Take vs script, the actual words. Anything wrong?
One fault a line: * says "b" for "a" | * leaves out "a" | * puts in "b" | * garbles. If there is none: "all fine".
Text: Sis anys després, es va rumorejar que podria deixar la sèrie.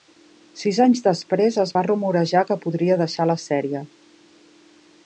all fine